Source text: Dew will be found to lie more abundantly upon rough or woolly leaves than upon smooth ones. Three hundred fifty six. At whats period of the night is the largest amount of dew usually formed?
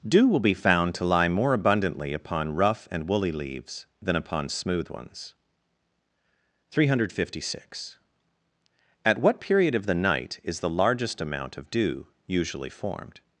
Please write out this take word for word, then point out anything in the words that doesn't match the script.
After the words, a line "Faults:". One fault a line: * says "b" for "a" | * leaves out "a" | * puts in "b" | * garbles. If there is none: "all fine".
Dew will be found to lie more abundantly upon rough and woolly leaves than upon smooth ones. Three hundred fifty six. At what period of the night is the largest amount of dew usually formed?
Faults:
* says "and" for "or"
* says "what" for "whats"